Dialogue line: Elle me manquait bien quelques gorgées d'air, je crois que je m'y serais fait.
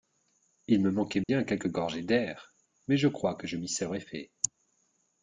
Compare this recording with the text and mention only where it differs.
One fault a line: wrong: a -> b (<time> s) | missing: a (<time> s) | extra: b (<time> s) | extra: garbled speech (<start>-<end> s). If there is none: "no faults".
wrong: Elle -> Il (0.7 s)
extra: mais (2.9 s)